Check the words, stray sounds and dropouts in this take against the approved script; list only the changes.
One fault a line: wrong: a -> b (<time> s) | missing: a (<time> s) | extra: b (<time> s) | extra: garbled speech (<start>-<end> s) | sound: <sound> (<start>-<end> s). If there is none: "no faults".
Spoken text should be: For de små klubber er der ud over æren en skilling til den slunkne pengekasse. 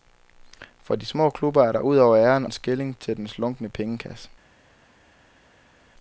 no faults